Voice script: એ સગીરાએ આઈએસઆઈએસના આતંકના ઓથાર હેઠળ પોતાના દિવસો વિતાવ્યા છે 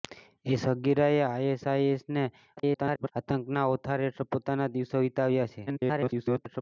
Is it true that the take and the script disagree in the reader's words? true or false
true